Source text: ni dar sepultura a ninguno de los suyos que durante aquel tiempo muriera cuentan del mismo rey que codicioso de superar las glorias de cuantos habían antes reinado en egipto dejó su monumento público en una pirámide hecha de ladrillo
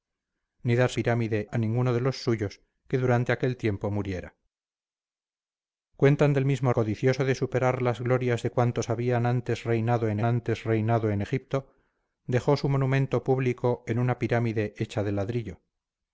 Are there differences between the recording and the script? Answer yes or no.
yes